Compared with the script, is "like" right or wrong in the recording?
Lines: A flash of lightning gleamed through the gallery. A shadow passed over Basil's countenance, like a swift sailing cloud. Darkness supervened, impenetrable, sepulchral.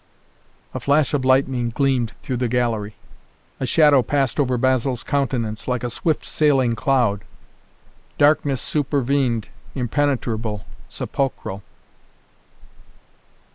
right